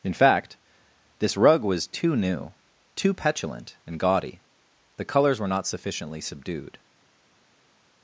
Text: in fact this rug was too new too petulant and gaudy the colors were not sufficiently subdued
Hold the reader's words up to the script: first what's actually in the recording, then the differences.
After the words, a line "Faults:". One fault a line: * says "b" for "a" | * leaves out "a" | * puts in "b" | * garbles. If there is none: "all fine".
in fact this rug was too new too petulant and gaudy the colors were not sufficiently subdued
Faults:
all fine